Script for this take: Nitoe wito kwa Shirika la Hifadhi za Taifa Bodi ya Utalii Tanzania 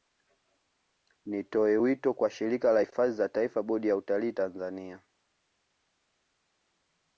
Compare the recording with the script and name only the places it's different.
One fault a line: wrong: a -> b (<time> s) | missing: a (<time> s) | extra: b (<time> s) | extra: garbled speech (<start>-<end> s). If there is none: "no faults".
no faults